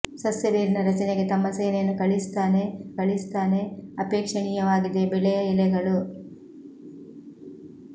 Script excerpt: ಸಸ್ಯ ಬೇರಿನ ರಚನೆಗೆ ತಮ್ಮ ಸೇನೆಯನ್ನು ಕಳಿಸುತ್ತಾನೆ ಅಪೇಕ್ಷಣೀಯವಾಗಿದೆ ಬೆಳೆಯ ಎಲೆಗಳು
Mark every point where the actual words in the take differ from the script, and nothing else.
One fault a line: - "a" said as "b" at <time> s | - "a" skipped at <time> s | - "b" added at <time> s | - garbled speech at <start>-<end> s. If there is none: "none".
- "ಕಳಿಸುತ್ತಾನೆ" added at 3.0 s